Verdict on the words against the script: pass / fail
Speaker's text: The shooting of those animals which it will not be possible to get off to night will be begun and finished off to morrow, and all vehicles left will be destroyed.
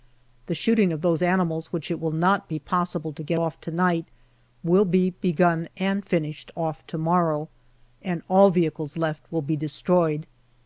pass